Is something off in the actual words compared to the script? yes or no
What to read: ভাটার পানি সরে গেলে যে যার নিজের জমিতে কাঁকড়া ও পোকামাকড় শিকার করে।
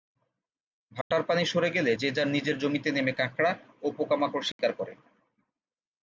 yes